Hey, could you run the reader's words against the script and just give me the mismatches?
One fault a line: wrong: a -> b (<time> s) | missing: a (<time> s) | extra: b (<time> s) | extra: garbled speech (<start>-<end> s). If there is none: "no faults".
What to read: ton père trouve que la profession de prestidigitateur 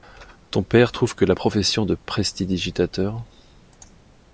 no faults